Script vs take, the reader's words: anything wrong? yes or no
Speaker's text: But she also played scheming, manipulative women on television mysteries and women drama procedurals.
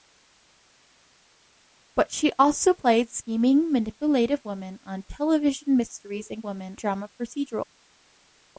no